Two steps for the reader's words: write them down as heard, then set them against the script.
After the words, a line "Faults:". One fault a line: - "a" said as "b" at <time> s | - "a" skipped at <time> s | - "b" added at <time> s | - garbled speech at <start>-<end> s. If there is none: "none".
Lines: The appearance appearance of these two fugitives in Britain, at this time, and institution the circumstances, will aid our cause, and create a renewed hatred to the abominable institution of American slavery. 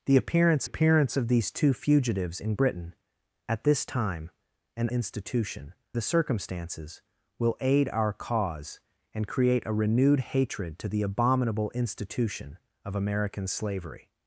The appearance appearance of these two fugitives in Britain, at this time, and institution the circumstances, will aid our cause, and create a renewed hatred to the abominable institution of American slavery.
Faults:
none